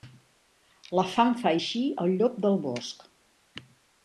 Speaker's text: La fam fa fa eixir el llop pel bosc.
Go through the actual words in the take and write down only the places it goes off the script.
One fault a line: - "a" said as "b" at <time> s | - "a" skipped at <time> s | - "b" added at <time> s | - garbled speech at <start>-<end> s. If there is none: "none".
- "fa" skipped at 1.5 s
- "pel" said as "del" at 2.5 s